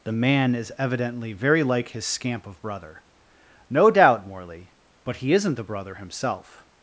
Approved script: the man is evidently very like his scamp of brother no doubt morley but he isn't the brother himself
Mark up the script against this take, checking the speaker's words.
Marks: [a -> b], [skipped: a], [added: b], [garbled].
the man is evidently very like his scamp of brother no doubt morley but he isn't the brother himself